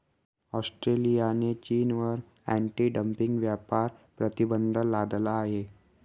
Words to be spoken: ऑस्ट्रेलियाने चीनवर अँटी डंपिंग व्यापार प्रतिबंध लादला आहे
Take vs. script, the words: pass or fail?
pass